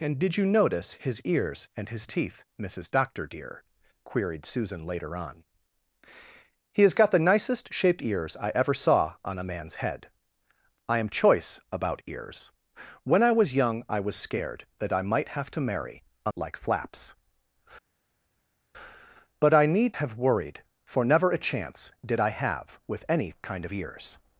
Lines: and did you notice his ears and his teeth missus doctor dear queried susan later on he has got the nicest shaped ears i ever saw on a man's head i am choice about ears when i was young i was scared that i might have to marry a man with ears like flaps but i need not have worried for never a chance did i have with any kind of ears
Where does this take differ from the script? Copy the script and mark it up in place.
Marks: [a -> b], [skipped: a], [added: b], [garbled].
and did you notice his ears and his teeth missus doctor dear queried susan later on he has got the nicest shaped ears i ever saw on a man's head i am choice about ears when i was young i was scared that i might have to marry a [skipped: man with ears] like flaps but i need [skipped: not] have worried for never a chance did i have with any kind of ears